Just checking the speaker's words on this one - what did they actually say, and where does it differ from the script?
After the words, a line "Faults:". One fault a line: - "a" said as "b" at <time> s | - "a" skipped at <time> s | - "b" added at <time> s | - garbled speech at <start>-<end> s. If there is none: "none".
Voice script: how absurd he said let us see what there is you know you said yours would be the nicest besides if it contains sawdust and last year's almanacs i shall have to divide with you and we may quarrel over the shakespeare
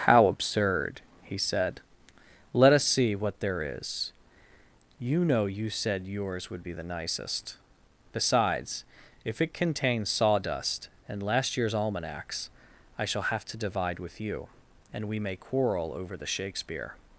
how absurd he said let us see what there is you know you said yours would be the nicest besides if it contains sawdust and last year's almanacs i shall have to divide with you and we may quarrel over the shakespeare
Faults:
none